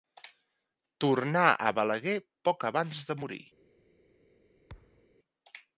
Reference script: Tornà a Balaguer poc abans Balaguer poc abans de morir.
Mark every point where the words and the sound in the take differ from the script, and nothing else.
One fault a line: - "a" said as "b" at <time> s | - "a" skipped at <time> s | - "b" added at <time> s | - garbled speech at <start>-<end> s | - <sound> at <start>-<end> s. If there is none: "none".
- "Balaguer poc abans" skipped at 3.1 s
- thud at 4.7-5.1 s